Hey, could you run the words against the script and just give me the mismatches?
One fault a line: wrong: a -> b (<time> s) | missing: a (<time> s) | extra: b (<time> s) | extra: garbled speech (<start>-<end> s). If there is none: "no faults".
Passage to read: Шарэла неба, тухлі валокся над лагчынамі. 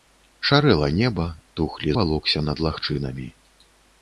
no faults